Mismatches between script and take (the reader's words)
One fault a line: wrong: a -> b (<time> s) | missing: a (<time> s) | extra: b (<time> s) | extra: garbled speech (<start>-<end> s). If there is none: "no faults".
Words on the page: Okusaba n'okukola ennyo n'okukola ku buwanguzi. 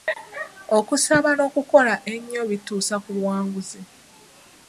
wrong: n'okukola -> bituusa (2.5 s)